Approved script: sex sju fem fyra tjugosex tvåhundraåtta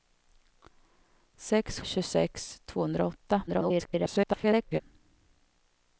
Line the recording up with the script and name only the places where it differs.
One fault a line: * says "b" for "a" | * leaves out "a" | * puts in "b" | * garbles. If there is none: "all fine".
* leaves out "sju fem fyra"
* garbles